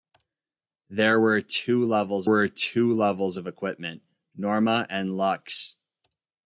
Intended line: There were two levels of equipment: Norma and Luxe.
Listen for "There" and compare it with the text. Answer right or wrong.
right